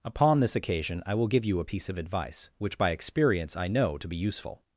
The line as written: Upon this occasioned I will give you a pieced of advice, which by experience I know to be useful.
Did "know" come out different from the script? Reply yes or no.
no